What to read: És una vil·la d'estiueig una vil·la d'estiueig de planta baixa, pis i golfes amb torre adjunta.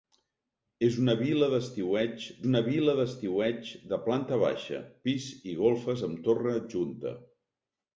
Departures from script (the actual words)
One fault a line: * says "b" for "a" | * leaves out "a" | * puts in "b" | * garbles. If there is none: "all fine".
all fine